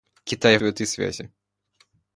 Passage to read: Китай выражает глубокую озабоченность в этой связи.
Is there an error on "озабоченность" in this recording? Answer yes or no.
yes